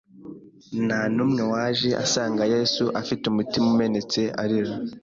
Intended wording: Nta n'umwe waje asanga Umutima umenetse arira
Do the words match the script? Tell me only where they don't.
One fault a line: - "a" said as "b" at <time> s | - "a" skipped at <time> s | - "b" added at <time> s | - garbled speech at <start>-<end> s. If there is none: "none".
- "Yesu afite" added at 2.5 s